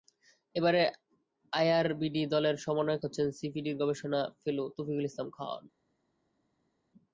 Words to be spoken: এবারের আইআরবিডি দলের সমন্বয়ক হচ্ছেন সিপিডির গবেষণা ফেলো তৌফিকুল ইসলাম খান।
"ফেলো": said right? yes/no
yes